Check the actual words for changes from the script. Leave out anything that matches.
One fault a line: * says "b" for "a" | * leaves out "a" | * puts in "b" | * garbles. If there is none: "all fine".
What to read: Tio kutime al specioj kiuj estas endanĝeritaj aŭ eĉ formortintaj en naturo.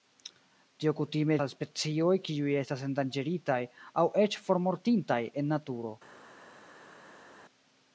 all fine